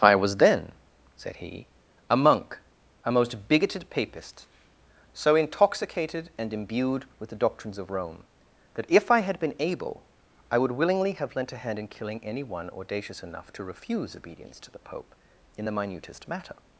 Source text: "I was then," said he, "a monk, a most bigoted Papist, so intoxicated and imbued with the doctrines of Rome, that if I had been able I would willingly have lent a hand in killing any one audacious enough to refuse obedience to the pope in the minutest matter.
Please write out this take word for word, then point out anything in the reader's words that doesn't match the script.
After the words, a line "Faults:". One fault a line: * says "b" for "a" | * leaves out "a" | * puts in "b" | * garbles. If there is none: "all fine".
"I was then," said he, "a monk, a most bigoted Papist, so intoxicated and imbued with the doctrines of Rome, that if I had been able I would willingly have lent a hand in killing any one audacious enough to refuse obedience to the pope in the minutest matter.
Faults:
all fine